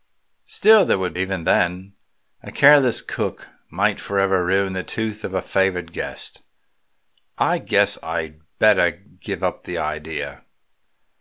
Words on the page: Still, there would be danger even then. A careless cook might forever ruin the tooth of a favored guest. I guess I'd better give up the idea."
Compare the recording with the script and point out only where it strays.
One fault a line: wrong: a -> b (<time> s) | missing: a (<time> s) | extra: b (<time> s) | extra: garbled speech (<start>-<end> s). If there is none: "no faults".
missing: be danger (1.1 s)